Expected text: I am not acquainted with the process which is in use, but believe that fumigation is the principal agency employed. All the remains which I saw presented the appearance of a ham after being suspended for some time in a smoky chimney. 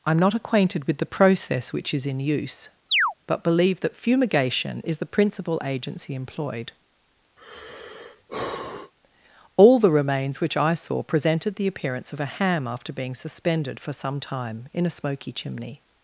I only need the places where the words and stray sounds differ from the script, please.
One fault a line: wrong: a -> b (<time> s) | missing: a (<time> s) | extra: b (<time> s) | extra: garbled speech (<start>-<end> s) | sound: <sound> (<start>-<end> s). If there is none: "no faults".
sound: chirp (2.9-3.1 s)
sound: sigh (7.4-8.9 s)